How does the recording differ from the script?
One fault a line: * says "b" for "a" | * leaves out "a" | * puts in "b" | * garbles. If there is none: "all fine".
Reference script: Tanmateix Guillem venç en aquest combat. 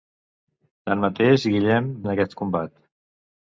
* leaves out "venç"